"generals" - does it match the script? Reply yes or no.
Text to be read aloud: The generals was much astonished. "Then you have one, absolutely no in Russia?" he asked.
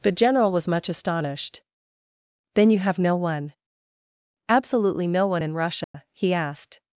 no